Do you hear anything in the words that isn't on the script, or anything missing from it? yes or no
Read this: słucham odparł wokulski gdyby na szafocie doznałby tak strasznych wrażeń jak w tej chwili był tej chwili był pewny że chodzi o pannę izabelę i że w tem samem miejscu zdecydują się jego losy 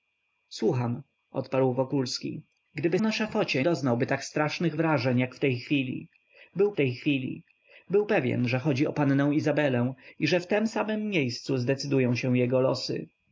no